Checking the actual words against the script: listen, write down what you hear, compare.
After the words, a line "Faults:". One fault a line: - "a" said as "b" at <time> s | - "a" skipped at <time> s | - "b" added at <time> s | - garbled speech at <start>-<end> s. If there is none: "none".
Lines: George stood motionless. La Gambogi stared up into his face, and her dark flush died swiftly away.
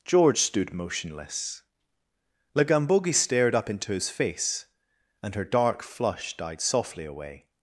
George stood motionless. La Gambogi stared up into his face, and her dark flush died softly away.
Faults:
- "swiftly" said as "softly" at 6.6 s